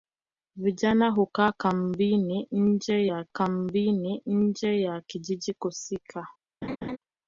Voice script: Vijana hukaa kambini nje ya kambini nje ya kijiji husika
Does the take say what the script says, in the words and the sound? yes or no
no